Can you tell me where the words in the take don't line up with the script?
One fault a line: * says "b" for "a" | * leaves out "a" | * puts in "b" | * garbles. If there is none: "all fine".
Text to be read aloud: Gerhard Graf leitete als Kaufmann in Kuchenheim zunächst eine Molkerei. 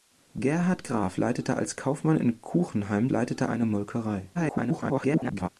* says "leitete" for "zunächst"
* garbles